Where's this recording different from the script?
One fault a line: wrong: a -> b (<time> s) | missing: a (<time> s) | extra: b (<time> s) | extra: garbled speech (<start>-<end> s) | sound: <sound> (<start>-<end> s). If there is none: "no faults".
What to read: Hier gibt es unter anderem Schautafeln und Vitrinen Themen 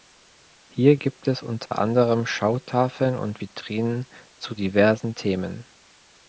sound: dropout (1.7-1.7 s)
extra: zu diversen (4.4 s)